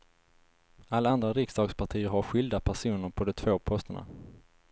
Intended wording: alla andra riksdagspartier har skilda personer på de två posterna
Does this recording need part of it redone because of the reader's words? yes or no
no